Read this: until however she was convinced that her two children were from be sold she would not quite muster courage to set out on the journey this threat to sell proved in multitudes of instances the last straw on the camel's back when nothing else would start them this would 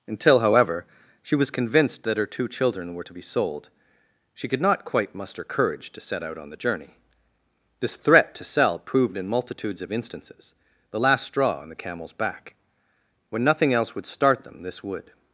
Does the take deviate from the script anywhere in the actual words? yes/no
yes